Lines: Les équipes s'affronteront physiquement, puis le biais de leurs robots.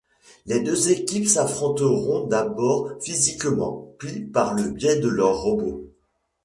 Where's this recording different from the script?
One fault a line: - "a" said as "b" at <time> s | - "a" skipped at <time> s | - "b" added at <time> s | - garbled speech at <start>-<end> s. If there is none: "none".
- "deux" added at 0.6 s
- "d'abord" added at 2.2 s
- "par" added at 4.2 s